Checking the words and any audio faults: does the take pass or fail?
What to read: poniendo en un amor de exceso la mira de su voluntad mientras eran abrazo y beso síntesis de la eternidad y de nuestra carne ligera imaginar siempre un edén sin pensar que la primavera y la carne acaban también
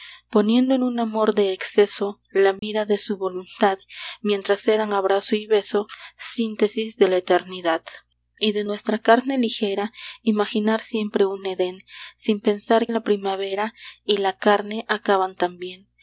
fail